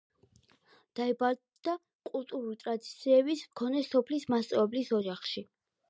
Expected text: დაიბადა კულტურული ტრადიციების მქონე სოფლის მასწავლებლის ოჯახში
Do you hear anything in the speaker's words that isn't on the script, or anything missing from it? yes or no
no